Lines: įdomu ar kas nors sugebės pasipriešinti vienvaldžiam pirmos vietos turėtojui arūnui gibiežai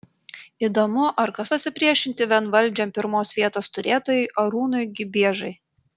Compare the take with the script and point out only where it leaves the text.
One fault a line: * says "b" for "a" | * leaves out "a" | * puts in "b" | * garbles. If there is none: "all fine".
* leaves out "nors sugebės"